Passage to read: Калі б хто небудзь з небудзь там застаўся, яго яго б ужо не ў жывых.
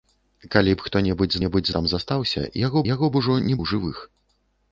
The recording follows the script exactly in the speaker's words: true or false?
true